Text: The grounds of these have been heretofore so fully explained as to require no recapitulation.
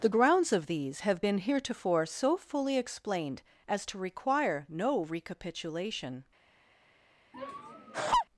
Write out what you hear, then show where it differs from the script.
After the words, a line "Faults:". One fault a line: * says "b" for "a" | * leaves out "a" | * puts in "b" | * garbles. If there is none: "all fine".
The grounds of these have been heretofore so fully explained as to require no recapitulation.
Faults:
all fine